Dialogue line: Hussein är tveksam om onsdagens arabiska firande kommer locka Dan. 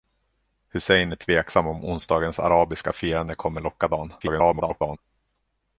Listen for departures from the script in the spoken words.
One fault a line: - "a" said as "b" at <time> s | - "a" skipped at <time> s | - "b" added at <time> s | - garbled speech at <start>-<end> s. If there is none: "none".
- garbled speech at 4.2-5.0 s